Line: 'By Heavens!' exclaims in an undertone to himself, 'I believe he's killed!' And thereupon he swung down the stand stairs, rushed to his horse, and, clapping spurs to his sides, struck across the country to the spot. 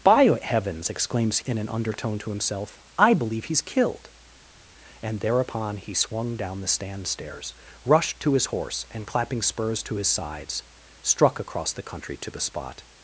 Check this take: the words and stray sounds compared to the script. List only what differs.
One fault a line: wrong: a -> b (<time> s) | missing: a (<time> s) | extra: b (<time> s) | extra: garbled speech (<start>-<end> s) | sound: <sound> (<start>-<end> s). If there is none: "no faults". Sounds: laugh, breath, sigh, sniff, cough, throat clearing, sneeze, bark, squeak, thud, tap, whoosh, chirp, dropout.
no faults